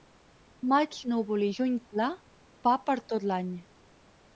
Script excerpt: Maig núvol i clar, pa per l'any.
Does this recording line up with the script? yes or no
no